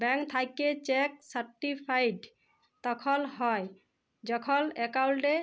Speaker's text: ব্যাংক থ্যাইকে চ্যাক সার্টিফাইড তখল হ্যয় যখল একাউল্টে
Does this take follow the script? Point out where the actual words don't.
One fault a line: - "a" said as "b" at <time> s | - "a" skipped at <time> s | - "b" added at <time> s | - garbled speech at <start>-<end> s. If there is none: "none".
none